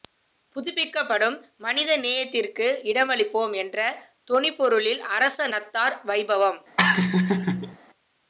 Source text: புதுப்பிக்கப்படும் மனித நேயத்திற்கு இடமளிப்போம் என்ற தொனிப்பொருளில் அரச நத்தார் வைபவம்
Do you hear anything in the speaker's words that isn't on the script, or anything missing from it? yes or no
no